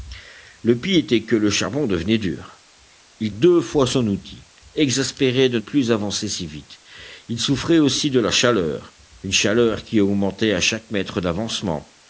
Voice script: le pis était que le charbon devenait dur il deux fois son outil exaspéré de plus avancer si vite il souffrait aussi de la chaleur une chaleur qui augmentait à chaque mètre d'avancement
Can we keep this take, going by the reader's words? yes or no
yes